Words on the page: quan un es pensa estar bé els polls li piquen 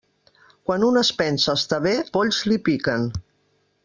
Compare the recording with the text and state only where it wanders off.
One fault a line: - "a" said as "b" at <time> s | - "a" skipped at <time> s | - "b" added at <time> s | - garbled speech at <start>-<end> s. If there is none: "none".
- "els" skipped at 1.9 s